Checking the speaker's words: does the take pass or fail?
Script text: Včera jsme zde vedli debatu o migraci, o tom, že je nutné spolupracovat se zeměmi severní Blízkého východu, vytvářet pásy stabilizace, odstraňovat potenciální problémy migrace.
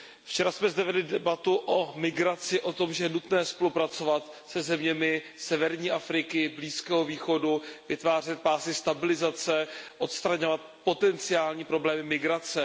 fail